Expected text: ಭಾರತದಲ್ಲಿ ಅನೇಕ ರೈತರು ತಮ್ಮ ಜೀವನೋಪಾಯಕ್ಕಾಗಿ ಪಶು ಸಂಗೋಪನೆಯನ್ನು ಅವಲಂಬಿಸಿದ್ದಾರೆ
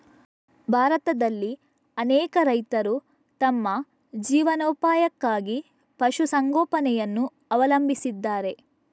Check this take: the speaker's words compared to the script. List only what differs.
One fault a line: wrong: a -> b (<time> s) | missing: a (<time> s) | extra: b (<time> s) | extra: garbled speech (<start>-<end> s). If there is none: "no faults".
no faults